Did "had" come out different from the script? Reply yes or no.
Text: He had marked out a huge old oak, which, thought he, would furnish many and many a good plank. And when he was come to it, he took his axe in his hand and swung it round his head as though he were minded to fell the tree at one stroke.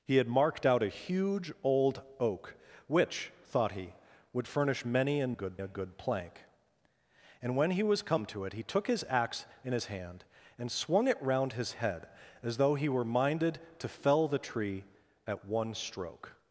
no